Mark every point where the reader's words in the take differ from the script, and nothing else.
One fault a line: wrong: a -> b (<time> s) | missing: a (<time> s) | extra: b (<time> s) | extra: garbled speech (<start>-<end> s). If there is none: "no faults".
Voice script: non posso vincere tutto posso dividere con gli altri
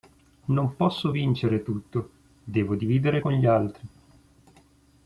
wrong: posso -> devo (2.4 s)